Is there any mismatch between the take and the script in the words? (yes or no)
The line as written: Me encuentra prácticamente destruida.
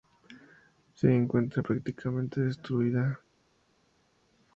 yes